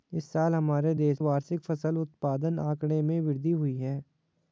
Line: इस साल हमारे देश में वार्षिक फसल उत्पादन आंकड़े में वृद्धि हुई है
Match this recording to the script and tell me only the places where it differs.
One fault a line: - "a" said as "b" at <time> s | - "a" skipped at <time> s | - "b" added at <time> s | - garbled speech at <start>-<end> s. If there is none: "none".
- "में" skipped at 1.2 s